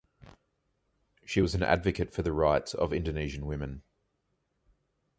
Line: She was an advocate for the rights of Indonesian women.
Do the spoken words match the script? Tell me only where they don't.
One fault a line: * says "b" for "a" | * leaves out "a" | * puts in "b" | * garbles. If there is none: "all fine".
all fine